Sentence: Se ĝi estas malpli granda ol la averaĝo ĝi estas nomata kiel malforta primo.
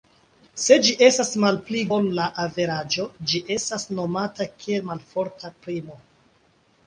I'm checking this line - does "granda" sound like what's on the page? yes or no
no